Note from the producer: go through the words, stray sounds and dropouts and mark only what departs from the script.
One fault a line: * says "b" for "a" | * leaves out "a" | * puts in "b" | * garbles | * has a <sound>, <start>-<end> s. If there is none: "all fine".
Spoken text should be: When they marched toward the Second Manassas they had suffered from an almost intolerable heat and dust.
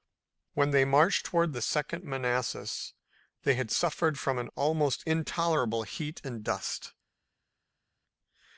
all fine